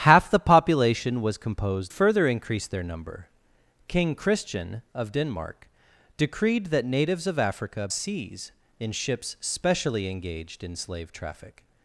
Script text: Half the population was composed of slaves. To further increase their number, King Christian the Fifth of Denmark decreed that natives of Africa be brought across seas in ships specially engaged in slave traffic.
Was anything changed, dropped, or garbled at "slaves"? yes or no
yes